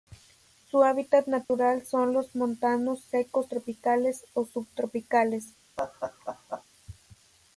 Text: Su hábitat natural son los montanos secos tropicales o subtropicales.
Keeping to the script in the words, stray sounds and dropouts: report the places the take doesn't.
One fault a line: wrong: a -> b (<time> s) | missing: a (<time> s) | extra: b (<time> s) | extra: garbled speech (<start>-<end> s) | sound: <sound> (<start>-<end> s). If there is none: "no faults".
sound: dropout (1.4-1.5 s)
sound: laugh (5.8-6.6 s)